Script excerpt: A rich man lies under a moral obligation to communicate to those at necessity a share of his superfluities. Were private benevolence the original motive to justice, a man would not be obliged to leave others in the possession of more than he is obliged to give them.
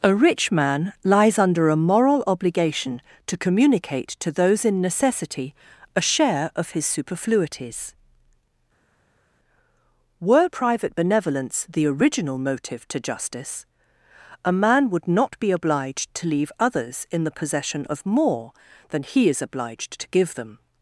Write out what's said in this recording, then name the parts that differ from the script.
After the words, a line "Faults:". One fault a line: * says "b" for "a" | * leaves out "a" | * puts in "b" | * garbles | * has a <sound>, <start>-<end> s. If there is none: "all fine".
A rich man lies under a moral obligation to communicate to those in necessity a share of his superfluities. Were private benevolence the original motive to justice, a man would not be obliged to leave others in the possession of more than he is obliged to give them.
Faults:
* says "in" for "at"